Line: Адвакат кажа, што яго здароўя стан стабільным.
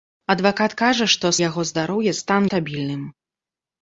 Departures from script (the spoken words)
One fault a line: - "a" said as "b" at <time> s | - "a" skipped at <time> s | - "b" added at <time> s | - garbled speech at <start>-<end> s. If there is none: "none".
none